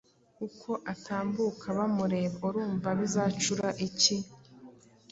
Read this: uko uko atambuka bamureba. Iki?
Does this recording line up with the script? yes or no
no